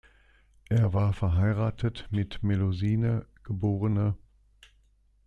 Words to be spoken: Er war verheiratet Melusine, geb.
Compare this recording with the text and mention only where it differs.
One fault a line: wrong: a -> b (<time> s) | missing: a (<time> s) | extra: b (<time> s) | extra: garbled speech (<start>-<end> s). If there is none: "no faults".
extra: mit (2.1 s)